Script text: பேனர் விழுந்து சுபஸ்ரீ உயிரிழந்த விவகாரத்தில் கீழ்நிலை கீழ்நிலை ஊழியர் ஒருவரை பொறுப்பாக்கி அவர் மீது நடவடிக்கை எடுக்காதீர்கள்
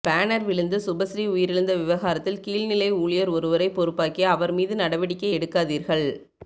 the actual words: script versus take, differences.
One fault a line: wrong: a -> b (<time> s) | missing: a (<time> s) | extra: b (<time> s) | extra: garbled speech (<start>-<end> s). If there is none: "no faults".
missing: கீழ்நிலை (2.9 s)